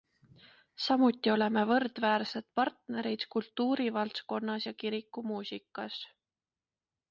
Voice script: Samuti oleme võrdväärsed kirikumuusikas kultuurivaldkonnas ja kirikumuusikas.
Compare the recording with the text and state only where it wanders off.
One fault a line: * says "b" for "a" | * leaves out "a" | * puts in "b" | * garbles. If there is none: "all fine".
* says "partnerid" for "kirikumuusikas"